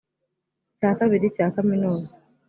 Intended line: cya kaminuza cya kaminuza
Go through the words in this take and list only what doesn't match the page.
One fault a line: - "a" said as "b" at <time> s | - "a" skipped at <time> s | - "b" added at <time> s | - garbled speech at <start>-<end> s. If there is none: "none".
- "kaminuza" said as "kabiri" at 1.0 s